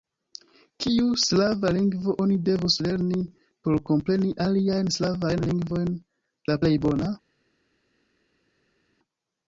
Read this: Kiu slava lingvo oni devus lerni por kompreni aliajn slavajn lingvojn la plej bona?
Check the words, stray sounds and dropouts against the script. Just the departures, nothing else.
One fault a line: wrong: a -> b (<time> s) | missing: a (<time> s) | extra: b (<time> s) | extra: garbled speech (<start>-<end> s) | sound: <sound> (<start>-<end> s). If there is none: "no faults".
no faults